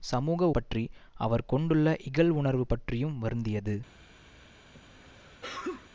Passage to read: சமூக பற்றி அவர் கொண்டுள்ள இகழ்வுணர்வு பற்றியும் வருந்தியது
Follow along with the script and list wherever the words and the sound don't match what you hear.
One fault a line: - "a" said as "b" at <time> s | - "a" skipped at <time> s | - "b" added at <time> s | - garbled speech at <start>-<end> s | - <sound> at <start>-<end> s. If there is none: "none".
- sneeze at 4.7-5.9 s